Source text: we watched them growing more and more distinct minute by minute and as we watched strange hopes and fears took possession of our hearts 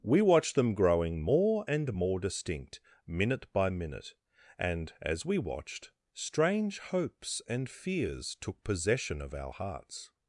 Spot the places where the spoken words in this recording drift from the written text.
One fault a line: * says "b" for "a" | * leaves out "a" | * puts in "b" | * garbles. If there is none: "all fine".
all fine